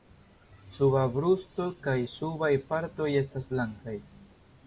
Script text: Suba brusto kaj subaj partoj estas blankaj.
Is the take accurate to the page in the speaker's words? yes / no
yes